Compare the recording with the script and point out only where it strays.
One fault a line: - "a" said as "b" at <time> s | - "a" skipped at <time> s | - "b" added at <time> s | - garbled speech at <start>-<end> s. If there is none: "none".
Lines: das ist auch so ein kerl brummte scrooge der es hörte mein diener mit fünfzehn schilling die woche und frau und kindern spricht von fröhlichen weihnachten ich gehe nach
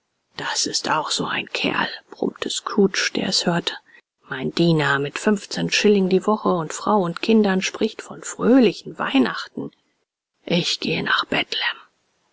none